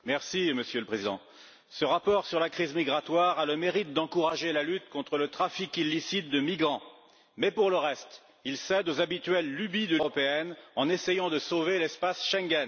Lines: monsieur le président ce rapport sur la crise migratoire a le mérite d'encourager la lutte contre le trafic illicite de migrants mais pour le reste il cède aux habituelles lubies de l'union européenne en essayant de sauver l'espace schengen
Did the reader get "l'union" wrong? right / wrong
wrong